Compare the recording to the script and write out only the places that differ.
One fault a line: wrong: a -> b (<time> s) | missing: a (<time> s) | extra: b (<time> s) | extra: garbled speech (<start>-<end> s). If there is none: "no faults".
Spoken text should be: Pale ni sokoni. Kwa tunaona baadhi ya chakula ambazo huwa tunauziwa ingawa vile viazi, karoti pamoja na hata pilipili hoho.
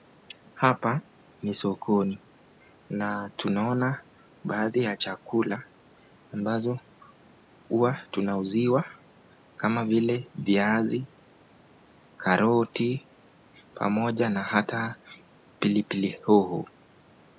wrong: Pale -> Hapa (0.5 s)
wrong: Kwa -> Na (2.9 s)
wrong: ingawa -> kama (9.6 s)